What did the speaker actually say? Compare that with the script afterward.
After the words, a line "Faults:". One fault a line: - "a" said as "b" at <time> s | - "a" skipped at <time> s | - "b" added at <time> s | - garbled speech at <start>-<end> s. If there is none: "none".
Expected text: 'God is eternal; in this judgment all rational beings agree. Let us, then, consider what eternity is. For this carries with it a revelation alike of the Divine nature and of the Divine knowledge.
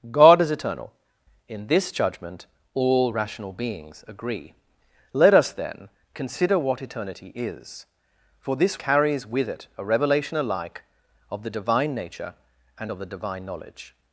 'God is eternal; in this judgment all rational beings agree. Let us, then, consider what eternity is. For this carries with it a revelation alike of the Divine nature and of the Divine knowledge.
Faults:
none